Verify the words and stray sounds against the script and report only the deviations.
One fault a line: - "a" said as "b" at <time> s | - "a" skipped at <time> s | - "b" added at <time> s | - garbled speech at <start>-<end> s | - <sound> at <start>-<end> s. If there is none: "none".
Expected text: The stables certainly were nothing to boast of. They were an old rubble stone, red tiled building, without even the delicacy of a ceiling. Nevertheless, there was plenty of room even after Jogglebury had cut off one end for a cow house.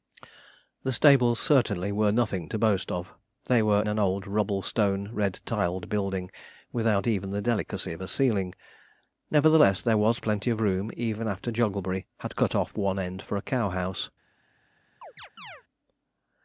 - chirp at 15.0-15.6 s